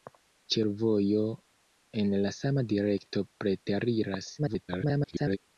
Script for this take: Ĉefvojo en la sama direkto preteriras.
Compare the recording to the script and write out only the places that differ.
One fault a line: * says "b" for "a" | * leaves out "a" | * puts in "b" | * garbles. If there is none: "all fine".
* garbles